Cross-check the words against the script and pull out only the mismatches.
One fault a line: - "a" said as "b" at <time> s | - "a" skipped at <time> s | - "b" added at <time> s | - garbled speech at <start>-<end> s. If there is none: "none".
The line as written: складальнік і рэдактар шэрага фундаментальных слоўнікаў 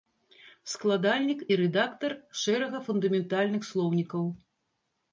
none